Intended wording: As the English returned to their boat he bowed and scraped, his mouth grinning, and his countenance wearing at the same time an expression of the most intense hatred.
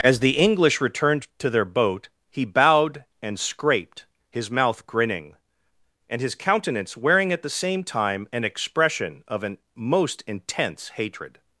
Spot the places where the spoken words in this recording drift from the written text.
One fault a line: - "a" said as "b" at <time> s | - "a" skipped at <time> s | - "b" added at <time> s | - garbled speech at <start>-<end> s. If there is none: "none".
- "the" said as "an" at 9.4 s